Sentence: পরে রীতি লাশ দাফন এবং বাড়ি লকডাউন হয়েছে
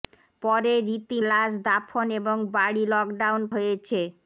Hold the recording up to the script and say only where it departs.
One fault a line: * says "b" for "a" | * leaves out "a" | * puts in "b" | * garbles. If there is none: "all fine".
all fine